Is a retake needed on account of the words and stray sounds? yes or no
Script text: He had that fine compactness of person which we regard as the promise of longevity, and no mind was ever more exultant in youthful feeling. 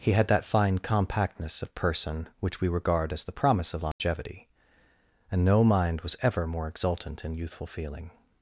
yes